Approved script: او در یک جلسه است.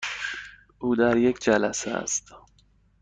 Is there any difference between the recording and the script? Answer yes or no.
no